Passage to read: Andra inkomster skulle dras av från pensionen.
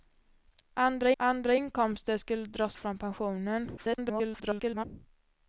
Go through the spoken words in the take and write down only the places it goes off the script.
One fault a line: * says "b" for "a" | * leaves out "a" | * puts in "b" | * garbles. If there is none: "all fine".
* puts in "andra"
* leaves out "av"
* garbles